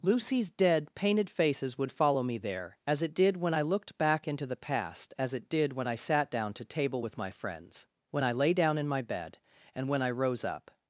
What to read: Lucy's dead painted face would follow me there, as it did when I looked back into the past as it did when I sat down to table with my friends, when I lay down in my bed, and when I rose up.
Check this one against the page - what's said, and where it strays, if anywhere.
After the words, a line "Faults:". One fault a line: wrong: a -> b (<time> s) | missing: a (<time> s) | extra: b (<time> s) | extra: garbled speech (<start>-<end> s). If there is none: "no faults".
Lucy's dead painted faces would follow me there, as it did when I looked back into the past as it did when I sat down to table with my friends, when I lay down in my bed, and when I rose up.
Faults:
wrong: face -> faces (1.3 s)